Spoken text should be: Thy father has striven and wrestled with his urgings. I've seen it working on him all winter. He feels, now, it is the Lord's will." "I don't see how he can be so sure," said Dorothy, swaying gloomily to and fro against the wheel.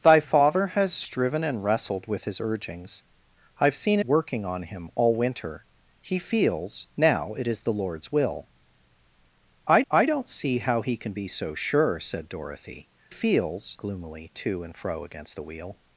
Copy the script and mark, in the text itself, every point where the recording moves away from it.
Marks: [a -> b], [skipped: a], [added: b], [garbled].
Thy father has striven and wrestled with his urgings. I've seen [skipped: it] working on him all winter. He feels, now, it is the Lord's will." "I [added: I] don't see how he can be so sure," said Dorothy, [swaying -> feels] gloomily to and fro against the wheel.